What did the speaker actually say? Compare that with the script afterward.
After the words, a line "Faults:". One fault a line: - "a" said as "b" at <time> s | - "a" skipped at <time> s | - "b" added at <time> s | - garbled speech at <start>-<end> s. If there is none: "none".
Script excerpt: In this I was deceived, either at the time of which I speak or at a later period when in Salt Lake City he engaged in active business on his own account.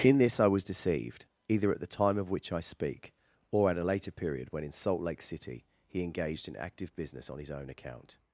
In this I was deceived, either at the time of which I speak or at a later period when in Salt Lake City he engaged in active business on his own account.
Faults:
none